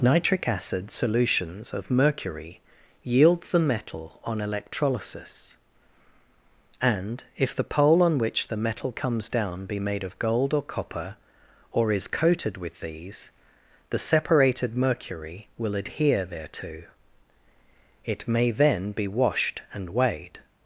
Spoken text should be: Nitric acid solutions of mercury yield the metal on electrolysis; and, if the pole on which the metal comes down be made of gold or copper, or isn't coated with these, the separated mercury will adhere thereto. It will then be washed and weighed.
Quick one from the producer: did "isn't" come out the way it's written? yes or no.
no